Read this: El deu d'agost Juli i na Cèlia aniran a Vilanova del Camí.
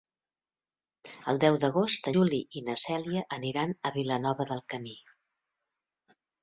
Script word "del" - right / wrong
right